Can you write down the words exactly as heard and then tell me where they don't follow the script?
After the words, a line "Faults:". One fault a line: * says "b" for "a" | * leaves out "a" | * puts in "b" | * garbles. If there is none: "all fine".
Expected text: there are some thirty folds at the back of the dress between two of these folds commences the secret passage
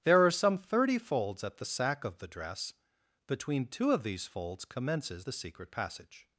there are some thirty folds at the sack of the dress between two of these folds commences the secret passage
Faults:
* says "sack" for "back"